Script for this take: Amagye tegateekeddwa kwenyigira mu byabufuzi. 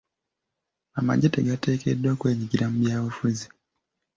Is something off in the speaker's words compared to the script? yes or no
no